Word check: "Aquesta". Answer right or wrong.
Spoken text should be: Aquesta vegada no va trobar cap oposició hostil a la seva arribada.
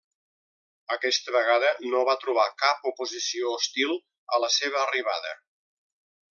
right